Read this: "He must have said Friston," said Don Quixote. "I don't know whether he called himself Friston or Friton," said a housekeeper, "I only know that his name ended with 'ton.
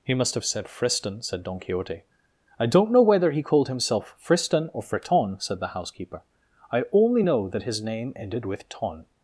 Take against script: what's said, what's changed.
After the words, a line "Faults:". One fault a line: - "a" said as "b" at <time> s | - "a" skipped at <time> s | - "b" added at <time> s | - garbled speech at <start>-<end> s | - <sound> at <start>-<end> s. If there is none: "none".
"He must have said Friston," said Don Quixote. "I don't know whether he called himself Friston or Friton," said the housekeeper, "I only know that his name ended with 'ton.
Faults:
- "a" said as "the" at 5.6 s